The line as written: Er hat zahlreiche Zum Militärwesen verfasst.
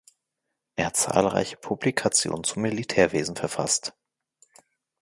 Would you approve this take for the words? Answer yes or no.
no